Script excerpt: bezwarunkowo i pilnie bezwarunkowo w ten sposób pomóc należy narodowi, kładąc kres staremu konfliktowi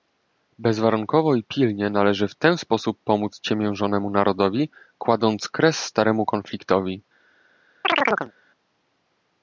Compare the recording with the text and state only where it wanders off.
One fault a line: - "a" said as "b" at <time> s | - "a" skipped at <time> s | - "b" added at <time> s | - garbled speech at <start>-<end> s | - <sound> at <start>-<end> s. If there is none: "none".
- "bezwarunkowo" said as "należy" at 1.9 s
- "należy" said as "ciemiężonemu" at 3.4 s
- chirp at 7.8-8.3 s